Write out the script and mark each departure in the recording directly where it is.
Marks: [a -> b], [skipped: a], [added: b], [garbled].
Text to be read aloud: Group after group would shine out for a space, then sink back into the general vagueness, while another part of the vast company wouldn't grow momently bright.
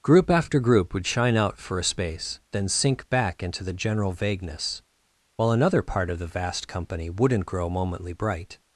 Group after group would shine out for a space, then sink back into the general vagueness, while another part of the vast company wouldn't grow momently bright.